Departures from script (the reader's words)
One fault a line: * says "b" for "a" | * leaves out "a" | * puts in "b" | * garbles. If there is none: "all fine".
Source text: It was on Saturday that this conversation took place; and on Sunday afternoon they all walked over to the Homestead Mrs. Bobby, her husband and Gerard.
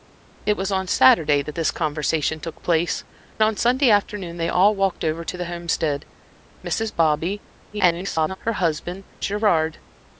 * leaves out "and"
* garbles
* leaves out "and"